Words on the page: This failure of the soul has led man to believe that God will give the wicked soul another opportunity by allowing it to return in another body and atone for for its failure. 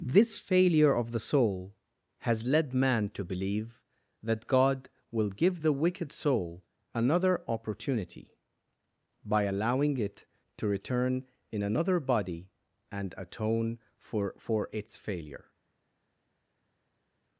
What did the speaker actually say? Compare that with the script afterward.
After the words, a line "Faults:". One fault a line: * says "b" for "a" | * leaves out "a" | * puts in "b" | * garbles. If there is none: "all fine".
This failure of the soul has led man to believe that God will give the wicked soul another opportunity by allowing it to return in another body and atone for for its failure.
Faults:
all fine